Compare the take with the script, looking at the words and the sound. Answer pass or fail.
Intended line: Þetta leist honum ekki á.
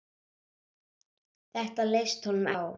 fail